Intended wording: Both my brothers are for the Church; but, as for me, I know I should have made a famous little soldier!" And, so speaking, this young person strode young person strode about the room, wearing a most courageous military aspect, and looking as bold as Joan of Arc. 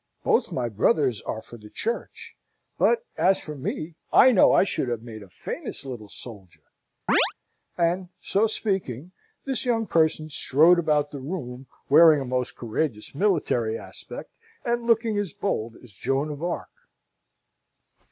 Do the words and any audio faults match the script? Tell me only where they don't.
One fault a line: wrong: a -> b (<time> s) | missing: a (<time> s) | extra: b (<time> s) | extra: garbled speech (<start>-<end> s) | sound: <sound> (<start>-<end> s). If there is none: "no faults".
sound: chirp (7.1-7.3 s)
missing: young person strode (10.8 s)